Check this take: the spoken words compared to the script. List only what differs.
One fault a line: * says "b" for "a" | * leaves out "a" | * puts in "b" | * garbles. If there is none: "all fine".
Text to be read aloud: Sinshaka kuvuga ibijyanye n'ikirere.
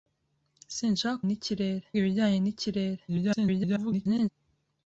* says "n'ikirere" for "kuvuga"
* garbles